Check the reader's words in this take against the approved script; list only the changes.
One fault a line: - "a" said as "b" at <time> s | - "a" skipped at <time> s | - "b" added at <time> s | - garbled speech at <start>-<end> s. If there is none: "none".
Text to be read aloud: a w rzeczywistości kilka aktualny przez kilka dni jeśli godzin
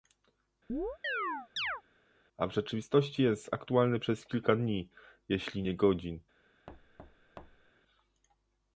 - "kilka" said as "jest" at 3.2 s
- "nie" added at 5.6 s